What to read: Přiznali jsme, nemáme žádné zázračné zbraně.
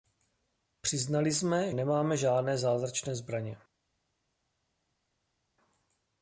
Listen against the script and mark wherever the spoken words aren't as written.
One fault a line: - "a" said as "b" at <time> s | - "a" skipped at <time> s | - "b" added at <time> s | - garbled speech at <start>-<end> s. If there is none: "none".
none